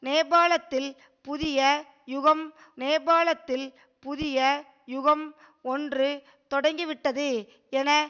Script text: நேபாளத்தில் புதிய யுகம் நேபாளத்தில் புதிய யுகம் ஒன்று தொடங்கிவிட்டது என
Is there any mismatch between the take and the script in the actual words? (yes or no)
no